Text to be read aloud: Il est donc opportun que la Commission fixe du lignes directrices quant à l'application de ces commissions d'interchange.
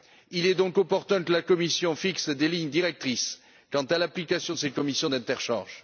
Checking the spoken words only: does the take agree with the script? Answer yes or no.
no